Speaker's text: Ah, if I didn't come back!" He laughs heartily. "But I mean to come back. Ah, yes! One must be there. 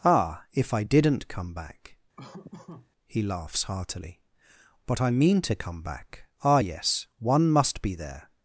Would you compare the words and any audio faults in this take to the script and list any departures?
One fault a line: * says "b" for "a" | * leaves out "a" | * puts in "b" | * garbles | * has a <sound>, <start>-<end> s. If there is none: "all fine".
* has a laugh, 2.2-2.9 s